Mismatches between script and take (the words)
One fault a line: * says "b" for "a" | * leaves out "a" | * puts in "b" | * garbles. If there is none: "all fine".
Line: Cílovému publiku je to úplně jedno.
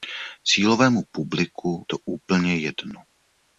* leaves out "je"